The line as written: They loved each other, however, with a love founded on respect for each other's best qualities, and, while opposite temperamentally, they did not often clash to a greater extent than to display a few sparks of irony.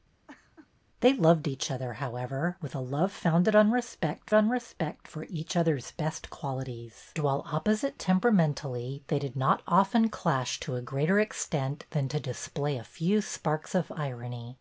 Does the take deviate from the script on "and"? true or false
true